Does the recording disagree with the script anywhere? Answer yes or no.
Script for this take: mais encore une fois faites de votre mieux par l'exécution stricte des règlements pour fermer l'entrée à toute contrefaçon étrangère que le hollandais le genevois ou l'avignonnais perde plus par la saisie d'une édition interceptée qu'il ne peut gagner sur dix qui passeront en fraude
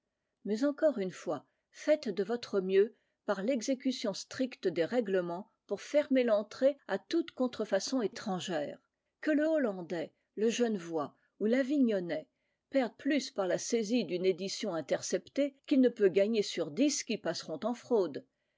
no